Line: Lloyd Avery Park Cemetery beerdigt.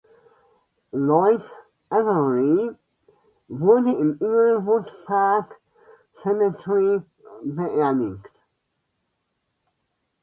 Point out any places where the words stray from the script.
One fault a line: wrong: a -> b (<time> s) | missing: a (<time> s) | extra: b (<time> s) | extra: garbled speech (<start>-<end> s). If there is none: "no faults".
extra: wurde im Inglewood (3.5 s)